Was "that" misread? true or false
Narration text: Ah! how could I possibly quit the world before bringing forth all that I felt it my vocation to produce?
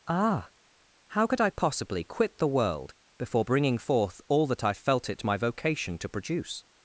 false